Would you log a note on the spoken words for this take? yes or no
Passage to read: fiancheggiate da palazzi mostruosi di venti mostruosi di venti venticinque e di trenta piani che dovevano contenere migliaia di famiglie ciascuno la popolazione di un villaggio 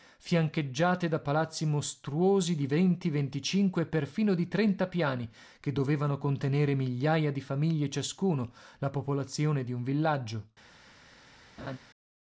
yes